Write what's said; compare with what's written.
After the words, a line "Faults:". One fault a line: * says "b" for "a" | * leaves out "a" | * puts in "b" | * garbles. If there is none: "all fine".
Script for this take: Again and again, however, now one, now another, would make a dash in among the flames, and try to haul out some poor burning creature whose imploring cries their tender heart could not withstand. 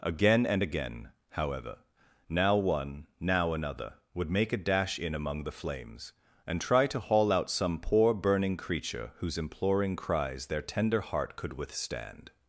Again and again, however, now one, now another, would make a dash in among the flames, and try to haul out some poor burning creature whose imploring cries their tender heart could withstand.
Faults:
* leaves out "not"